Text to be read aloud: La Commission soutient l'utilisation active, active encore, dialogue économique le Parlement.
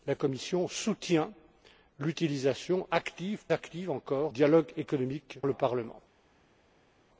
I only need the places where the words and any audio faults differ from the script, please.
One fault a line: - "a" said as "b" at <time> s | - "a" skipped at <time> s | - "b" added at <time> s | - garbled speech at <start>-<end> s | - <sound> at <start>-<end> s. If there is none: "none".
none